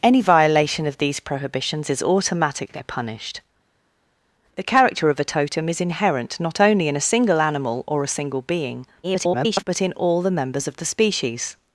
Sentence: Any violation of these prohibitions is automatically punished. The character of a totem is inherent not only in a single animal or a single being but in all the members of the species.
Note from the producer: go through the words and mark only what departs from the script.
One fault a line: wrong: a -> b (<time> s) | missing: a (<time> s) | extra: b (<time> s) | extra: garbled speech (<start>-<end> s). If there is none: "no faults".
extra: garbled speech (9.0-9.6 s)